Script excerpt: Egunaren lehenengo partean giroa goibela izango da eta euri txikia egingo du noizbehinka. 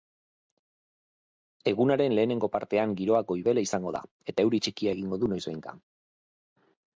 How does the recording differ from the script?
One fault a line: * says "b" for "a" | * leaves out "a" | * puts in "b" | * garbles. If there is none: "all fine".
all fine